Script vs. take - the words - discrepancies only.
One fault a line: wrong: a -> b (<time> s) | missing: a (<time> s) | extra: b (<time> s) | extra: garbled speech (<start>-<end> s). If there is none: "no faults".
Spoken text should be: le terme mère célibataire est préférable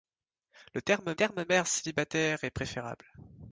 extra: terme (1.1 s)